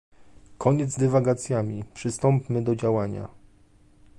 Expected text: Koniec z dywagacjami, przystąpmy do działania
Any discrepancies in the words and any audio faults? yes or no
no